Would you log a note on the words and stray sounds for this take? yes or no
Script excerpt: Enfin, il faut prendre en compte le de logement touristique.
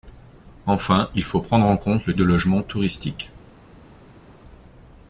no